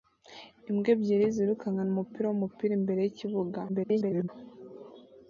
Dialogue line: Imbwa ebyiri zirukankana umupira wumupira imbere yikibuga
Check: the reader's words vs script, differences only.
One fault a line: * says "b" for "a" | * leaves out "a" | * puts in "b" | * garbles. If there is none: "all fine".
* garbles